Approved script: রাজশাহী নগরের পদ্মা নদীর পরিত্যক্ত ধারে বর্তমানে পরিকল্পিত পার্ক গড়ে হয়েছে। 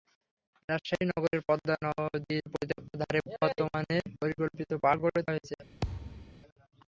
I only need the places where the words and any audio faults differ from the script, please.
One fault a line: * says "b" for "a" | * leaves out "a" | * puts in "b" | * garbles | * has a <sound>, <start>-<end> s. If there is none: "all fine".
* has a thud, 5.8-6.4 s